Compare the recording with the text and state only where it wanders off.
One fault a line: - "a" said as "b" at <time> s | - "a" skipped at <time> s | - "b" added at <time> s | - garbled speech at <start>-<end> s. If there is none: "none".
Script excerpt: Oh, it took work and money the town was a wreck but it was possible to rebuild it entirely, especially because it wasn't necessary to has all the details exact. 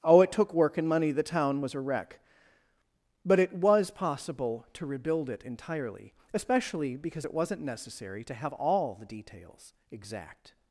- "has" said as "have" at 8.3 s